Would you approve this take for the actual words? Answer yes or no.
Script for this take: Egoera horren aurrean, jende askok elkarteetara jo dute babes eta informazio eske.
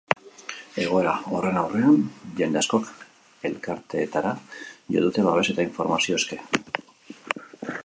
yes